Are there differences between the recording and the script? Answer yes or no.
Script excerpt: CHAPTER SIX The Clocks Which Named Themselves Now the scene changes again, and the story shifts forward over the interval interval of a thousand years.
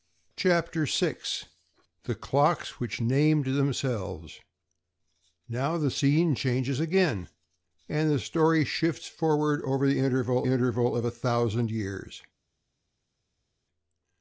no